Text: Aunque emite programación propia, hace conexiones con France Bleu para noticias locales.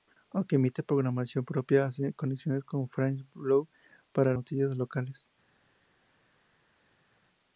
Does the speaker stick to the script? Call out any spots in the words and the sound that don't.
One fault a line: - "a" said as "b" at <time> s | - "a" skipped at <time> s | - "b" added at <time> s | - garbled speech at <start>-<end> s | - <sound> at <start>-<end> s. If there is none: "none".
none